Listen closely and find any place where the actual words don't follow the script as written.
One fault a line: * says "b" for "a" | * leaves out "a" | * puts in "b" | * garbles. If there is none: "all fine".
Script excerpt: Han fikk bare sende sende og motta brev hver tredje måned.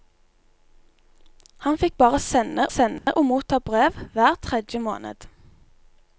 all fine